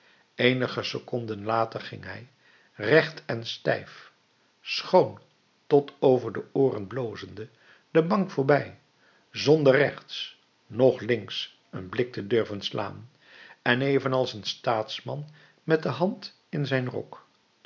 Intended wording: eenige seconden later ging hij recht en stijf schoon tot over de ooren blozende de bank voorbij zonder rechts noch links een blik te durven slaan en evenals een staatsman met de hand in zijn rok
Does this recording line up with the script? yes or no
yes